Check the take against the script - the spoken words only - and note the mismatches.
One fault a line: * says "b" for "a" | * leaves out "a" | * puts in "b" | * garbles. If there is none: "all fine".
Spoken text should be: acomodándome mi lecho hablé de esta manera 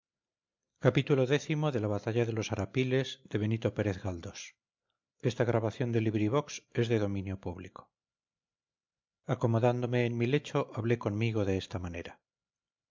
* puts in "en"
* puts in "conmigo"